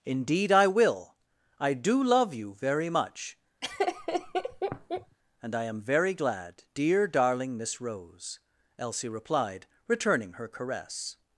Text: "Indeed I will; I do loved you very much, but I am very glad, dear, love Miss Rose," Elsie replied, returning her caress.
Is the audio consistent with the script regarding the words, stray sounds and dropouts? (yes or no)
no